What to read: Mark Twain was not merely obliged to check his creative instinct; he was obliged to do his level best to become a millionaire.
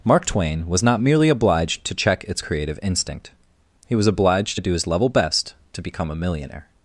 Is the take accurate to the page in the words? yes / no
no